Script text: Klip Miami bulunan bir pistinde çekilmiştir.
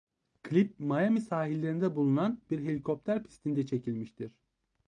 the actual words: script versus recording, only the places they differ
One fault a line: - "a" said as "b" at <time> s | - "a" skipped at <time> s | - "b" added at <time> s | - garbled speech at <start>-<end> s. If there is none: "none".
- "sahillerinde" added at 1.2 s
- "helikopter" added at 2.6 s